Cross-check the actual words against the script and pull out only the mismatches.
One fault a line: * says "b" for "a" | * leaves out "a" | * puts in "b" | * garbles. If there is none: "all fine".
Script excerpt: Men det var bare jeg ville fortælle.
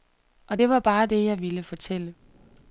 * says "Og" for "Men"
* puts in "det"